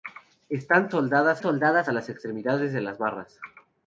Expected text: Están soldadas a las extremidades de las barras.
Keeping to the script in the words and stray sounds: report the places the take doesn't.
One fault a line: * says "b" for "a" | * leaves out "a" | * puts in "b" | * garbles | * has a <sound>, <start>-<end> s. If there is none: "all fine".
* puts in "soldadas"